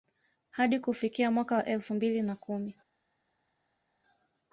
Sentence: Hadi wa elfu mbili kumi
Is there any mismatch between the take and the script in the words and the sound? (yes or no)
yes